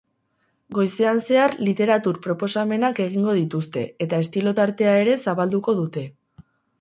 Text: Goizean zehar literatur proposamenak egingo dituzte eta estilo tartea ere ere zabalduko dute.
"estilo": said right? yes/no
yes